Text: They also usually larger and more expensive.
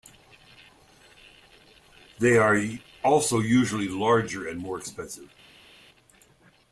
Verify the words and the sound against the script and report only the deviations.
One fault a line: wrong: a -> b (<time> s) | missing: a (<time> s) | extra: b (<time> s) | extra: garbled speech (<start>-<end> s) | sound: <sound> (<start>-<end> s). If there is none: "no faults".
extra: are (2.4 s)